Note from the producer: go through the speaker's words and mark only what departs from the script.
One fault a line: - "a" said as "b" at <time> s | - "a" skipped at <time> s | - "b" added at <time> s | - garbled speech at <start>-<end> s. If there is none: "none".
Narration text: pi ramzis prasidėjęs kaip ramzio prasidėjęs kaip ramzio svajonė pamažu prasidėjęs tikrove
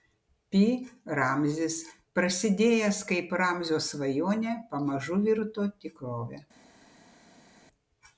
- "prasidėjęs kaip ramzio" skipped at 3.8 s
- "prasidėjęs" said as "virto" at 5.3 s